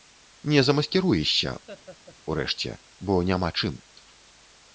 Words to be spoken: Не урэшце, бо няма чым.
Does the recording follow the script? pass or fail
fail